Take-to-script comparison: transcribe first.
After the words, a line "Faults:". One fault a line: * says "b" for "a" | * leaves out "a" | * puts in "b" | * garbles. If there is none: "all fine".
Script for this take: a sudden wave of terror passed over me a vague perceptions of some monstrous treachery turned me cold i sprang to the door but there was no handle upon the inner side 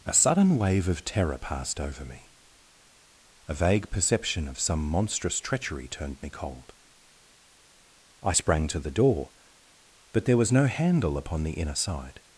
a sudden wave of terror passed over me a vague perception of some monstrous treachery turned me cold i sprang to the door but there was no handle upon the inner side
Faults:
* says "perception" for "perceptions"